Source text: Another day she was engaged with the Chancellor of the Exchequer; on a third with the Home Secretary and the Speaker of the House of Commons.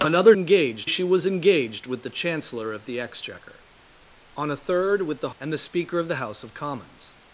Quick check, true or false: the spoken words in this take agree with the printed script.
false